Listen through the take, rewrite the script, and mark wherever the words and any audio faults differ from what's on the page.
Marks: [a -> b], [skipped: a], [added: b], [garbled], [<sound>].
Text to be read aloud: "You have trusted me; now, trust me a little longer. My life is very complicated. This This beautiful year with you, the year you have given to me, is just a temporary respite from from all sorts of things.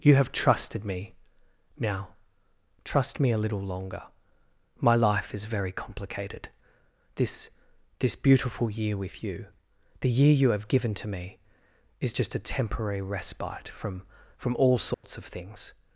"You have trusted me; now, trust me a little longer. My life is very complicated. This This beautiful year with you, the year you have given to me, is just a temporary respite from from all sorts [dropout] of things.